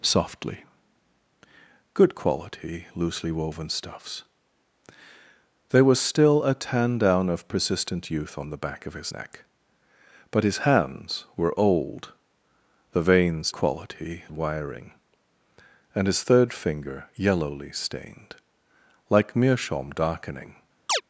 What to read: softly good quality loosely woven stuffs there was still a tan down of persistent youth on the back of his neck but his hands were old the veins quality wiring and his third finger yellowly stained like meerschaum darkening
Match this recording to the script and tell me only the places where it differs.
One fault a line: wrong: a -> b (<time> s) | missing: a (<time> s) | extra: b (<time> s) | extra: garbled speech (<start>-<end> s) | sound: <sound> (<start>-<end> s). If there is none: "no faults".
sound: chirp (20.9-21.0 s)